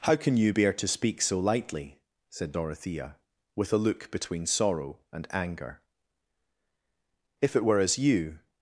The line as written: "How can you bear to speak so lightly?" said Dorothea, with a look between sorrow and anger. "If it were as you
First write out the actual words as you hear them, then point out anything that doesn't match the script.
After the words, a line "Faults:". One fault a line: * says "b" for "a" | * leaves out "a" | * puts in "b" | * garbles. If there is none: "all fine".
"How can you bear to speak so lightly?" said Dorothea, with a look between sorrow and anger. "If it were as you
Faults:
all fine